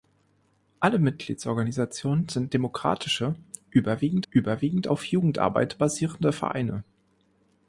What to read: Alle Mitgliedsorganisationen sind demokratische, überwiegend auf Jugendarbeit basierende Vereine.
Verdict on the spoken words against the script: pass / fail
fail